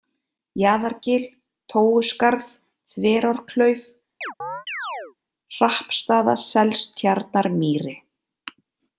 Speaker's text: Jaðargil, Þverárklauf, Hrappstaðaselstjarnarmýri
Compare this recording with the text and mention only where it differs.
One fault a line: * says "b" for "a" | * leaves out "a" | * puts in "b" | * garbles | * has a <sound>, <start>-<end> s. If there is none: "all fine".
* puts in "Tóuskarð"
* has a chirp, 4.2-5.2 s